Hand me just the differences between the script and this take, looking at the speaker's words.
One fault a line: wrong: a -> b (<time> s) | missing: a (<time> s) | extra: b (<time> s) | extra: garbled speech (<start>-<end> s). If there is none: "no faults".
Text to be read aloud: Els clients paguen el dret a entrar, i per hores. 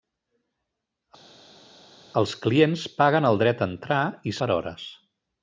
no faults